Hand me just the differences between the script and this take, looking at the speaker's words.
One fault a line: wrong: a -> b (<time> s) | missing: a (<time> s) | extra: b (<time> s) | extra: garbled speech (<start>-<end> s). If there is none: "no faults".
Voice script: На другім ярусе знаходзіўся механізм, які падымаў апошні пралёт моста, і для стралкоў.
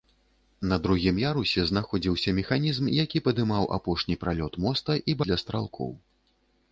no faults